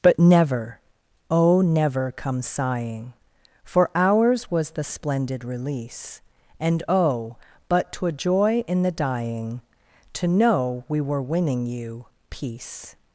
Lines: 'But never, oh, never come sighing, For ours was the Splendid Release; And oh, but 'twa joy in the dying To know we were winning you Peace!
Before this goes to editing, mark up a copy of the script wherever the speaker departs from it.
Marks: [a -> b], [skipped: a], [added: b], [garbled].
'But never, oh, never come sighing, For ours was the Splendid Release; And oh, but 'twa joy in the dying To know we were winning you Peace!